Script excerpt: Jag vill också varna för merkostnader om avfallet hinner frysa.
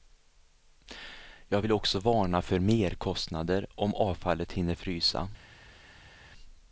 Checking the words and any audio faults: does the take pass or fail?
pass